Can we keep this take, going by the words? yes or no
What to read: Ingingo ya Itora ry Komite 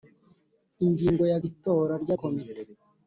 yes